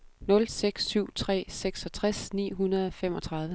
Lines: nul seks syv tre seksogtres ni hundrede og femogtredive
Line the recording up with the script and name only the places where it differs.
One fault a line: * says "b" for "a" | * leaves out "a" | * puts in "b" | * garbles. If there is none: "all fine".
all fine